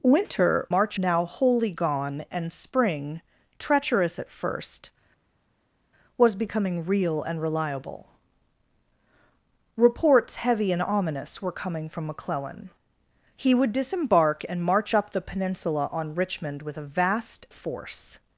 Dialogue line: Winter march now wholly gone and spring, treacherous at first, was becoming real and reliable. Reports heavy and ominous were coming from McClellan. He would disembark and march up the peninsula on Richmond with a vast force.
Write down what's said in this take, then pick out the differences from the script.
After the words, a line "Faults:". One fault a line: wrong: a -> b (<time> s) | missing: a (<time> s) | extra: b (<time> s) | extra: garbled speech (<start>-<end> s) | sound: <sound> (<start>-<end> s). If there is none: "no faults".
Winter march now wholly gone and spring, treacherous at first, was becoming real and reliable. Reports heavy and ominous were coming from McClellan. He would disembark and march up the peninsula on Richmond with a vast force.
Faults:
no faults